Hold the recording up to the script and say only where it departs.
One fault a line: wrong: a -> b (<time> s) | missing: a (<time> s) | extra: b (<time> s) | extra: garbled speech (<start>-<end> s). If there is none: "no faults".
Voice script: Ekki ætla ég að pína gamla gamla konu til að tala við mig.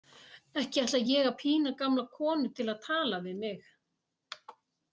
missing: gamla (2.0 s)